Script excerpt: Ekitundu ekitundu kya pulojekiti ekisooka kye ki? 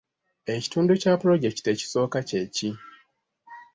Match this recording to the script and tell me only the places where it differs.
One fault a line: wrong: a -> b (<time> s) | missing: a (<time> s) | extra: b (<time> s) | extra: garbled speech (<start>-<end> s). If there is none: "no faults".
missing: ekitundu (0.9 s)